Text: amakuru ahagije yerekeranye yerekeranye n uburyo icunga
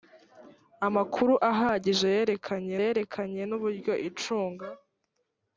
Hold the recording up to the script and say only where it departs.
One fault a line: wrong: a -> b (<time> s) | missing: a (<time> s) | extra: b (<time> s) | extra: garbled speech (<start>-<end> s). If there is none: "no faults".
no faults